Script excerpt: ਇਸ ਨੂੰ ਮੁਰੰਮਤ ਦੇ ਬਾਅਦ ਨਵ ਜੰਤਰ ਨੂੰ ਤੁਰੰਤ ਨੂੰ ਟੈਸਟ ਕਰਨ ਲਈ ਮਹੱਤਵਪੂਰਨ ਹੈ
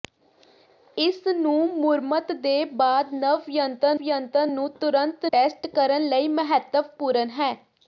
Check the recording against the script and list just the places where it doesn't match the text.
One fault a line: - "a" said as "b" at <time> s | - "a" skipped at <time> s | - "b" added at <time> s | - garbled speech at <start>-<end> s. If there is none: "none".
- "ਜੰਤਰ" added at 4.0 s
- "ਨੂੰ" skipped at 5.2 s